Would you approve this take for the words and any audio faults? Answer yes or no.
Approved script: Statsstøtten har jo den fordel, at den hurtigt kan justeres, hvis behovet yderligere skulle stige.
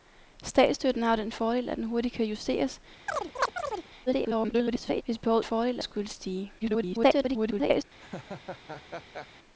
no